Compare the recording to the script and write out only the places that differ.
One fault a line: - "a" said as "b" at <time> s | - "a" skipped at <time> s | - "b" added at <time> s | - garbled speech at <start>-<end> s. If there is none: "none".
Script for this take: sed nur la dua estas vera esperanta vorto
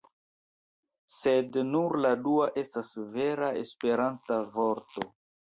none